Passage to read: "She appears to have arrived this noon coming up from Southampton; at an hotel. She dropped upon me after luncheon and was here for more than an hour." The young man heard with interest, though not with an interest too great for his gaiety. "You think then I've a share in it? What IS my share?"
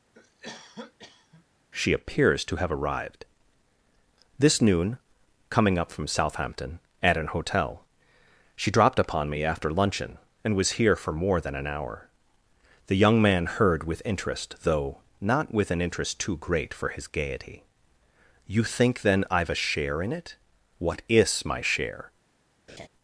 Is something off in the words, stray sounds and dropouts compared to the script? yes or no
yes